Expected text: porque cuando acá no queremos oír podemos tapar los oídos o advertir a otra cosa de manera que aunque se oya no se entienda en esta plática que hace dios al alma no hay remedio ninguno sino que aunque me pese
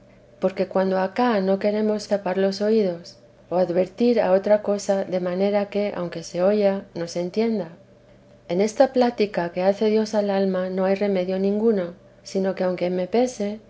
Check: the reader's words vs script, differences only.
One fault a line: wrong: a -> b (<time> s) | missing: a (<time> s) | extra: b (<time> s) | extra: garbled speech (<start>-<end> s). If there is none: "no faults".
missing: oír podemos (2.1 s)